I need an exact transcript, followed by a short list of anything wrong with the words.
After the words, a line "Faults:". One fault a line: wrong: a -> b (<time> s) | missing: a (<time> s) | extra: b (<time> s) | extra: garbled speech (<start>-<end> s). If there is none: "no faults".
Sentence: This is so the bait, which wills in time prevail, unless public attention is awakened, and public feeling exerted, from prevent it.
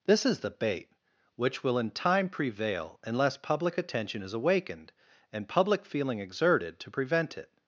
This is the bait, which will in time prevail, unless public attention is awakened, and public feeling exerted, to prevent it.
Faults:
missing: so (0.4 s)
wrong: wills -> will (1.6 s)
wrong: from -> to (6.8 s)